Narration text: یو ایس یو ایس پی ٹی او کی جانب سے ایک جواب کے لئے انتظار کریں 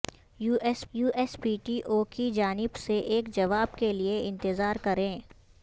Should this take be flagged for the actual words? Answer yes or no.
no